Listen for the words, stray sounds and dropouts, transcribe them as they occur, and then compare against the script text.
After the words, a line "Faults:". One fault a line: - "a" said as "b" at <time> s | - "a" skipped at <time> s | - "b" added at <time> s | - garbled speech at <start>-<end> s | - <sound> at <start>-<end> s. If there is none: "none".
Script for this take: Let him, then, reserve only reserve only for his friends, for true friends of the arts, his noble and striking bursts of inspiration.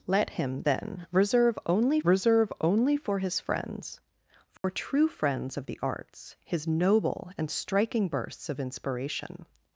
Let him, then, reserve only reserve only for his friends, for true friends of the arts, his noble and striking bursts of inspiration.
Faults:
- dropout at 4.6-4.6 s